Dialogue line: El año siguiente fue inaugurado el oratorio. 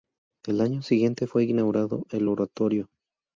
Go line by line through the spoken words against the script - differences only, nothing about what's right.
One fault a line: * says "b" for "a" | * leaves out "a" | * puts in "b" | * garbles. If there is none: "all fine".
all fine